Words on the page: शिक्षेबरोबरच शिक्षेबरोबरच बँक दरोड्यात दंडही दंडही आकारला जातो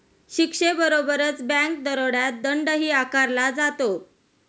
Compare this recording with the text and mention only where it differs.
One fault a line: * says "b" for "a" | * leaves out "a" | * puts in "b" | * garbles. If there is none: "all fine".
* leaves out "शिक्षेबरोबरच"
* leaves out "दंडही"